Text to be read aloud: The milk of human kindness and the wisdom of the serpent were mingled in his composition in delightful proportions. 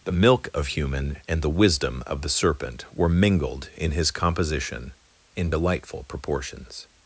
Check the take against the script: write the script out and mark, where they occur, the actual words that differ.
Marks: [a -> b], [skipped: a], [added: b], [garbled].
The milk of human [skipped: kindness] and the wisdom of the serpent were mingled in his composition in delightful proportions.